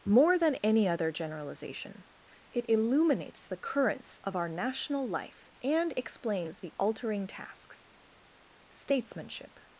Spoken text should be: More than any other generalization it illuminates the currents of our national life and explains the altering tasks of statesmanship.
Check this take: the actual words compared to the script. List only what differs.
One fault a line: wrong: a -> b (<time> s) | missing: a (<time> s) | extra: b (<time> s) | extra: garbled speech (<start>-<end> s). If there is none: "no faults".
missing: of (7.9 s)